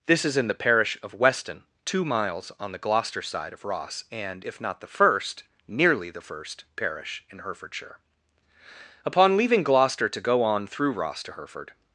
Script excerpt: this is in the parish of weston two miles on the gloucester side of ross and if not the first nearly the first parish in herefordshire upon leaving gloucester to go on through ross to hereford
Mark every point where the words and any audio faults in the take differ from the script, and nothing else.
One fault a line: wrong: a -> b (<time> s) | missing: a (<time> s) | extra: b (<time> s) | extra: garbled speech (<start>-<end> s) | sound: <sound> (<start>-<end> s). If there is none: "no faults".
no faults